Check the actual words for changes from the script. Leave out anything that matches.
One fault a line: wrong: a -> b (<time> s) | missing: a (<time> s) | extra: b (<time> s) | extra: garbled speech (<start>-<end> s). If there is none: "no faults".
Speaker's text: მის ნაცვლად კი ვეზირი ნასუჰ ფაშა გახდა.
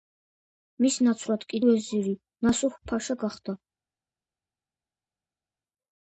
no faults